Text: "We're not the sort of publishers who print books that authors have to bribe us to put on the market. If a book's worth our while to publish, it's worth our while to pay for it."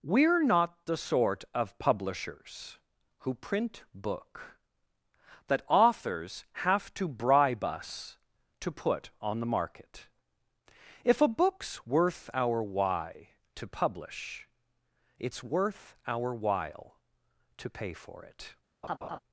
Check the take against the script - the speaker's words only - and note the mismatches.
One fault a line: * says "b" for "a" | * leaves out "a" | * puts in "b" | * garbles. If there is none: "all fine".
* says "book" for "books"
* says "why" for "while"